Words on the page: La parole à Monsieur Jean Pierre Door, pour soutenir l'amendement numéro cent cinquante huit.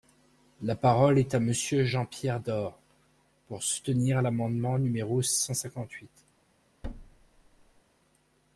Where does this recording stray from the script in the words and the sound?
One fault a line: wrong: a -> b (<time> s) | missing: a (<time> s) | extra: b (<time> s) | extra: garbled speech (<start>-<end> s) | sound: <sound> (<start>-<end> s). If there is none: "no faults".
extra: est (1.2 s)
sound: thud (6.8-7.8 s)